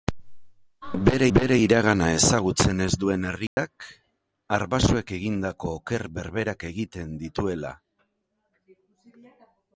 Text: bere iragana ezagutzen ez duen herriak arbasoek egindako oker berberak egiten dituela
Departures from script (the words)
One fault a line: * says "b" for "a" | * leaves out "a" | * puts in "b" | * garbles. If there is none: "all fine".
* puts in "bere"